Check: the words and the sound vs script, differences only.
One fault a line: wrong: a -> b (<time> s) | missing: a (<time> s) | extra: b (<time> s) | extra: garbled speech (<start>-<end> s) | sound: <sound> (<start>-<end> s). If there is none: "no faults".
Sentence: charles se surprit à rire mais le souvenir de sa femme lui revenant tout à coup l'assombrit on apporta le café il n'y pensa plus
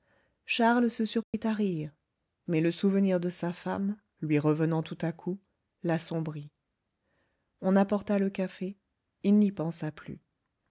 sound: dropout (1.2-1.3 s)